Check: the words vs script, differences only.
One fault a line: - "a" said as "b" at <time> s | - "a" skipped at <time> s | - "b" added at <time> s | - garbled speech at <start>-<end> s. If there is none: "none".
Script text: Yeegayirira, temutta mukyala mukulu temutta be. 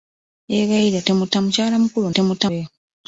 none